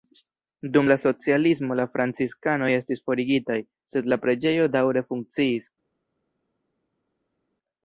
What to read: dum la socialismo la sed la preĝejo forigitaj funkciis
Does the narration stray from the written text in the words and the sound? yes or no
yes